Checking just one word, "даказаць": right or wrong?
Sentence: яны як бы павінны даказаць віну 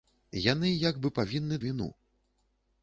wrong